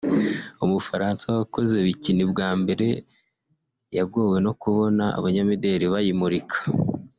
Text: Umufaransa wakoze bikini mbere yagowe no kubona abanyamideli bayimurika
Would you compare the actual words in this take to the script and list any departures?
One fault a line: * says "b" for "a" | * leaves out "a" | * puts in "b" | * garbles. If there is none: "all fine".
* puts in "bwa"